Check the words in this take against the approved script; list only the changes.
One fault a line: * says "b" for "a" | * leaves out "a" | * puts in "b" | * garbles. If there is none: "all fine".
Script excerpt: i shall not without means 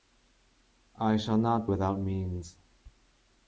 all fine